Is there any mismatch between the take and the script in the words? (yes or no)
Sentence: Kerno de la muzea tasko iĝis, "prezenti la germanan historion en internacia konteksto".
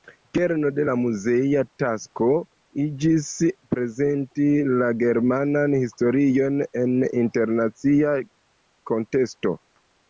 no